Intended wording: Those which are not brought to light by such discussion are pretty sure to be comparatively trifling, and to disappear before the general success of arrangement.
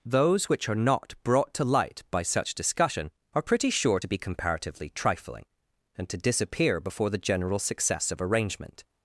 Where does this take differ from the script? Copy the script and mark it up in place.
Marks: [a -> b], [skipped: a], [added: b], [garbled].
Those which are not brought to light by such discussion are pretty sure to be comparatively trifling, and to disappear before the general success of arrangement.